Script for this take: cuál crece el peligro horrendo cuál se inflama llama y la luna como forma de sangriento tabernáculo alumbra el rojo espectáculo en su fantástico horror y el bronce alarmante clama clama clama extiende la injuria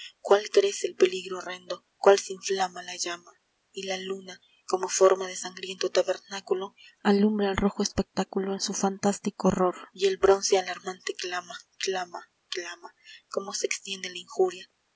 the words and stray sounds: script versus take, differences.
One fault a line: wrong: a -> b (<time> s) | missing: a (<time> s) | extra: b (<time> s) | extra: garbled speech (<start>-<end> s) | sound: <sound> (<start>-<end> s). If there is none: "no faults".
extra: la (2.8 s)
extra: como se (13.3 s)